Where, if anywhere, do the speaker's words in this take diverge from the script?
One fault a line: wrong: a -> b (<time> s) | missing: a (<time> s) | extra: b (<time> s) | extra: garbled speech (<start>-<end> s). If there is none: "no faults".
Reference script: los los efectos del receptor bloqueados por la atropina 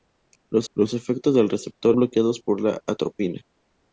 no faults